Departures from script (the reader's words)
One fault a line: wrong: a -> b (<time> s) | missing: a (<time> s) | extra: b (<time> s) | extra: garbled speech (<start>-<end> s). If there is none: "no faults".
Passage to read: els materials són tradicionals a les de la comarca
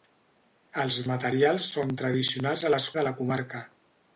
no faults